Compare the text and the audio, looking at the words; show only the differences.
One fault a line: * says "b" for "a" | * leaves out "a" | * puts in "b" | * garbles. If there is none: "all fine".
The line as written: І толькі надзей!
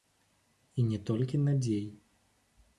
* puts in "не"